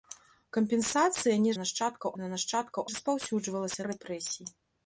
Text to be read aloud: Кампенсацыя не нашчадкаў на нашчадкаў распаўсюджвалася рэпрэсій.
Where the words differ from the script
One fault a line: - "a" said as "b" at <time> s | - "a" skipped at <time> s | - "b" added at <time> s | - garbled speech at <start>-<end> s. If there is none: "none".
none